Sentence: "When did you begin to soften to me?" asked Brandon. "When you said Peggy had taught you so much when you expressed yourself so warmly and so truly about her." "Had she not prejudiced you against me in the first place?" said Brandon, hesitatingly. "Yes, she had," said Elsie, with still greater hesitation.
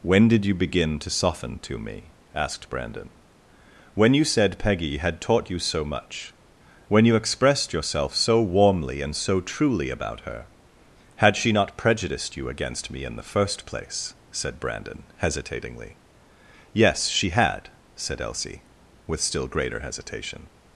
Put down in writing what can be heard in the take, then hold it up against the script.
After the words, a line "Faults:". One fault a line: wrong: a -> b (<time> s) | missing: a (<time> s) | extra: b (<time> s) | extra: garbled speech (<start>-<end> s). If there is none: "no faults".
"When did you begin to soften to me?" asked Brandon. "When you said Peggy had taught you so much when you expressed yourself so warmly and so truly about her." "Had she not prejudiced you against me in the first place?" said Brandon, hesitatingly. "Yes, she had," said Elsie, with still greater hesitation.
Faults:
no faults